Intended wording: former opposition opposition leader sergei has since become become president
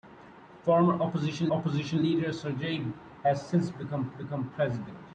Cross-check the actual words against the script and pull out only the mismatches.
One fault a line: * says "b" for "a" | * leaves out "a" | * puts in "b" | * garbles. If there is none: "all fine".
all fine